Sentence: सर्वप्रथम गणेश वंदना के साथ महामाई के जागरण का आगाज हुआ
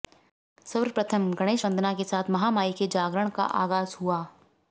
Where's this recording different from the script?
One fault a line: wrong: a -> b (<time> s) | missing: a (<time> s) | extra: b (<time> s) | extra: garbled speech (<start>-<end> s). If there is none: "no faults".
no faults